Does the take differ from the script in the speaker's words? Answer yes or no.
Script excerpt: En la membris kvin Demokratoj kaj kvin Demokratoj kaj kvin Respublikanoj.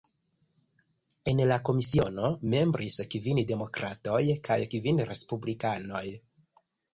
yes